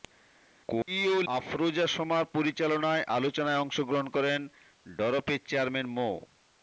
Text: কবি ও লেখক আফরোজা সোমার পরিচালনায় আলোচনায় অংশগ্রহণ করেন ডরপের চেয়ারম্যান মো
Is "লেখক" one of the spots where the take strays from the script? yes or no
yes